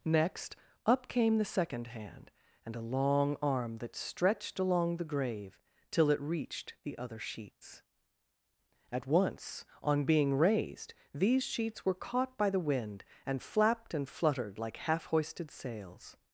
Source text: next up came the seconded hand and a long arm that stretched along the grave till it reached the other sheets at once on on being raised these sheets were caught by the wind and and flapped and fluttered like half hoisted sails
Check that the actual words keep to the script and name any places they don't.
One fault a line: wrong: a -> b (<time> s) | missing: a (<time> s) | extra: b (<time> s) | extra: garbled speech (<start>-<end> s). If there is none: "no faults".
wrong: seconded -> second (1.4 s)
missing: on (10.1 s)
missing: and (13.4 s)